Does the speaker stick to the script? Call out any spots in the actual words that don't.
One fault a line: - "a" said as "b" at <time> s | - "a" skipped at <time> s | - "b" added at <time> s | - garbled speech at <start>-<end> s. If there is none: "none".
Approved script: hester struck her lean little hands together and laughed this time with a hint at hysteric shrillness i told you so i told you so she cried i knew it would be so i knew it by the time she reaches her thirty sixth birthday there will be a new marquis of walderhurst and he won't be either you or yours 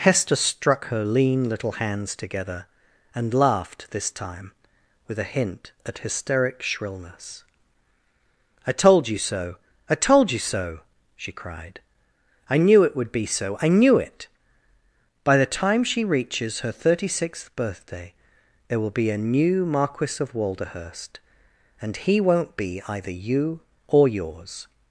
none